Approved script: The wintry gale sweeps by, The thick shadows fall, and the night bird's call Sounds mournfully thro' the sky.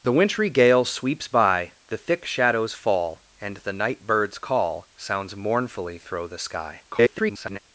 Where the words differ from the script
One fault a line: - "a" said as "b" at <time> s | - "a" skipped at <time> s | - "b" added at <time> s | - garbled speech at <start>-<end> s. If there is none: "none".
- garbled speech at 6.9-7.6 s